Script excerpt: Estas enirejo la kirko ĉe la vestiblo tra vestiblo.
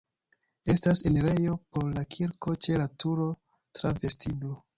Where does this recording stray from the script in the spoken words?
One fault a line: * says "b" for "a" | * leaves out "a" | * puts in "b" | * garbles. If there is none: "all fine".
* puts in "por"
* says "turo" for "vestiblo"